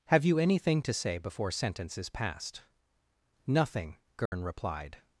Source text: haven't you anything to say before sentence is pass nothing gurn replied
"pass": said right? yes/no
no